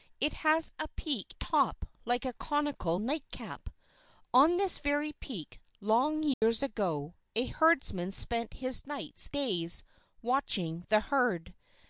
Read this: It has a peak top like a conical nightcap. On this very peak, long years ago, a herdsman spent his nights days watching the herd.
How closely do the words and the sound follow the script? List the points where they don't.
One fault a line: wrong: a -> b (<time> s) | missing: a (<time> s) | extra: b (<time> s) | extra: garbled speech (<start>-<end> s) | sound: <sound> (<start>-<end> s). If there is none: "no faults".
sound: dropout (6.3-6.4 s)